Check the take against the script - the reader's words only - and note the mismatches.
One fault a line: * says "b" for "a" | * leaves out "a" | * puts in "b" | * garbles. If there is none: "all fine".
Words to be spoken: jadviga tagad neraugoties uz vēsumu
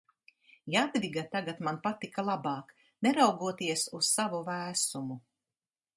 * puts in "man patika labāk"
* puts in "savu"